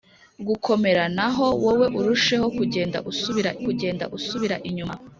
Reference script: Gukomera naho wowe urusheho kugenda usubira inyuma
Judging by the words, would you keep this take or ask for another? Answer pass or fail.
fail